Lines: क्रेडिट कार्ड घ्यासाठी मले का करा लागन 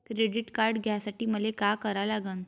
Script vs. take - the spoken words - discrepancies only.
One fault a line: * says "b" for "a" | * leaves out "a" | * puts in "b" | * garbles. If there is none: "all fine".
all fine